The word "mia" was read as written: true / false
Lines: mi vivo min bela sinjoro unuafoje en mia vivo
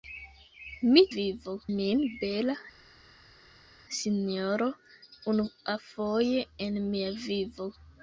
true